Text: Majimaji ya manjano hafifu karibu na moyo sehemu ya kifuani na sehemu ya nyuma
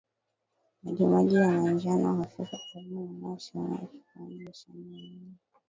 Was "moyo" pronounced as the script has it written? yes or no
yes